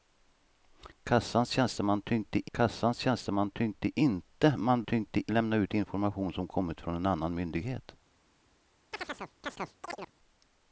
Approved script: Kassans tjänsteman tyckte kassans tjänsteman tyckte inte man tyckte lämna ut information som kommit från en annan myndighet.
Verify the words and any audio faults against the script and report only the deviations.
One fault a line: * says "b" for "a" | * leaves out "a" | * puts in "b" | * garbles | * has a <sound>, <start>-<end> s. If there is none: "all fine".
* has a chirp, 8.9-10.1 s